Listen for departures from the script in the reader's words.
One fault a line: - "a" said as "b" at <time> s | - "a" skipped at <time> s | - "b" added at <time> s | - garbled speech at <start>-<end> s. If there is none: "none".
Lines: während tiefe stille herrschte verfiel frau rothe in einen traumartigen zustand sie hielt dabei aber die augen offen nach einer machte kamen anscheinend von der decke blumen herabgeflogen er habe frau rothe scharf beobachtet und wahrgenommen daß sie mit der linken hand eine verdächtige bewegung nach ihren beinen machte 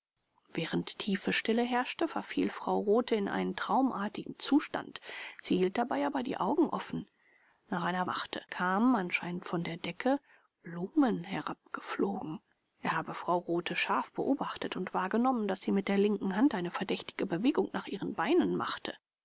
none